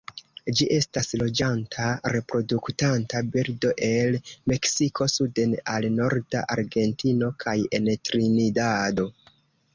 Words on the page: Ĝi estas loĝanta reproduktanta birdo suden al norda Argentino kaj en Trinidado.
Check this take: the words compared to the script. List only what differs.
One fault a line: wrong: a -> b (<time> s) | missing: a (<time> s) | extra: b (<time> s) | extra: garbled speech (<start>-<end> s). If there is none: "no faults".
extra: el Meksiko (3.9 s)